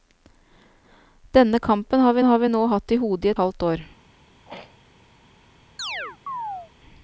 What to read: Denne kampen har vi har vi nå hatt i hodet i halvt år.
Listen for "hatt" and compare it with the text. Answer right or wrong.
right